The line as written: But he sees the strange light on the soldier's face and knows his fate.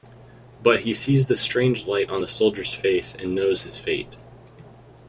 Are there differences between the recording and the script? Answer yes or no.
no